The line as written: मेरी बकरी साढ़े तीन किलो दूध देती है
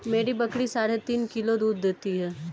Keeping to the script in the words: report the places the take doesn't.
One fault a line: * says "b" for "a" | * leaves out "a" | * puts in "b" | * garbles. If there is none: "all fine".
all fine